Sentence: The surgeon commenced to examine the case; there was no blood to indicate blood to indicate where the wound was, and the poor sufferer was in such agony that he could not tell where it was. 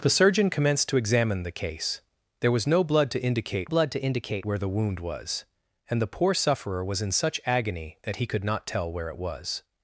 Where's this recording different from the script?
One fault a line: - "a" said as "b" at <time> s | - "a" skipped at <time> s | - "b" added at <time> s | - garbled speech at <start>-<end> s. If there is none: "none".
none